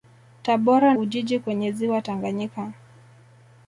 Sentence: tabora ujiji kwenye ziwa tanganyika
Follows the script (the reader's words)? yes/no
yes